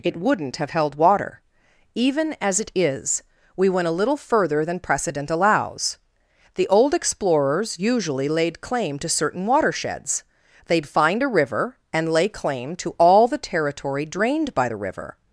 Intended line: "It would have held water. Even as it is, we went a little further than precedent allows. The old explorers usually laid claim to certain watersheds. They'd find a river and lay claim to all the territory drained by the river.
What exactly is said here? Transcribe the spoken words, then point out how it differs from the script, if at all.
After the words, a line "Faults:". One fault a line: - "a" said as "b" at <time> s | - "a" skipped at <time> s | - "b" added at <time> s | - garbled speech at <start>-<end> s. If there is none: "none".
"It wouldn't have held water. Even as it is, we went a little further than precedent allows. The old explorers usually laid claim to certain watersheds. They'd find a river and lay claim to all the territory drained by the river.
Faults:
- "would" said as "wouldn't" at 0.2 s